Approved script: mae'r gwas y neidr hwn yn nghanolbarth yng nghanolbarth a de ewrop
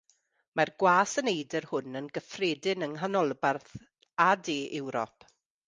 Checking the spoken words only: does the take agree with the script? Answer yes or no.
no